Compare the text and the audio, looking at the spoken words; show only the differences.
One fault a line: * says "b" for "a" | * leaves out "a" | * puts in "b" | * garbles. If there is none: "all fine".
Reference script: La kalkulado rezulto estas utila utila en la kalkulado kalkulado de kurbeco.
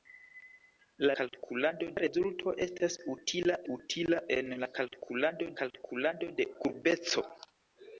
all fine